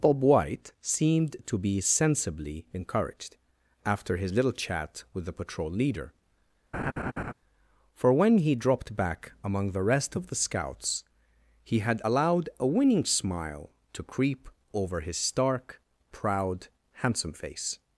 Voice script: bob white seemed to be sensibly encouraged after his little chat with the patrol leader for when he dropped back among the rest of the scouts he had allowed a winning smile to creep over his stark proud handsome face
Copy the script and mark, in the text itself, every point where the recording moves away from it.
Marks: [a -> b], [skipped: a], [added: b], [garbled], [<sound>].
bob white seemed to be sensibly encouraged after his little chat with the patrol leader [laugh] for when he dropped back among the rest of the scouts he had allowed a winning smile to creep over his stark proud handsome face